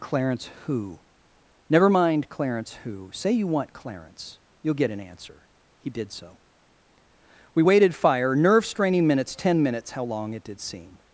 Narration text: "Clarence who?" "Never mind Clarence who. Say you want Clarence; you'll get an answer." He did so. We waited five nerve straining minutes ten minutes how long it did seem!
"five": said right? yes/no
no